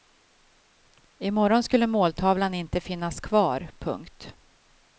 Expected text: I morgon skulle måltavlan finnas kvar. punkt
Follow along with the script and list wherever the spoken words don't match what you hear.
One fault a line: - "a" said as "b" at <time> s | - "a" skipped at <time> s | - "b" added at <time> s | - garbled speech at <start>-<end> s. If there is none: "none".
- "inte" added at 2.5 s